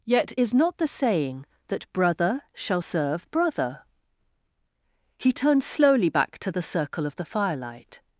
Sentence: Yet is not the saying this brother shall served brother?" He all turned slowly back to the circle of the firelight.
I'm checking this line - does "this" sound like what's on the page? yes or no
no